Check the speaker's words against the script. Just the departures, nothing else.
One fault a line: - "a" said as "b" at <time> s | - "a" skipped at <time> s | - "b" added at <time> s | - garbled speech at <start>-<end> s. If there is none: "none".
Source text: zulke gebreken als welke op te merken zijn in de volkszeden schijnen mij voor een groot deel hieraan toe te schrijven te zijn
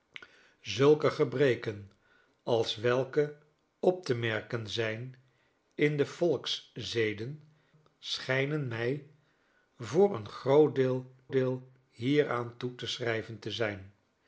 - "deel" added at 11.3 s